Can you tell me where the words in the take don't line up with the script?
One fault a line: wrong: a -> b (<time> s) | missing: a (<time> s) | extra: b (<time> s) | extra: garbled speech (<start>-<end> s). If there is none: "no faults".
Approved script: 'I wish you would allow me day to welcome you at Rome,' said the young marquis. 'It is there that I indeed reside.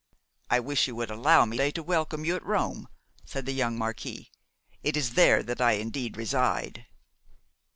no faults